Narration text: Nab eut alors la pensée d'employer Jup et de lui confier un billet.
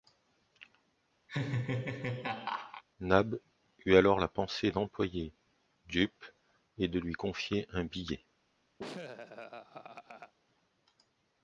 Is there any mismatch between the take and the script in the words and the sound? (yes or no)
yes